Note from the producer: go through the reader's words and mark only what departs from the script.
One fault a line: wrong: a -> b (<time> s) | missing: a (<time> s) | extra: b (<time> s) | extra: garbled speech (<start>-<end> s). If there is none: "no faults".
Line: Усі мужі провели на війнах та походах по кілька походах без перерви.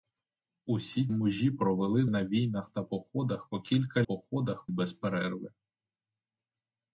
no faults